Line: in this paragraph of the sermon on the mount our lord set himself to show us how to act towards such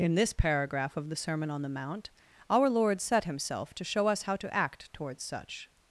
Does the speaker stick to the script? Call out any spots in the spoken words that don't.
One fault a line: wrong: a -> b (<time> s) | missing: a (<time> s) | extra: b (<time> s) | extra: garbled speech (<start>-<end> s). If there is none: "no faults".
no faults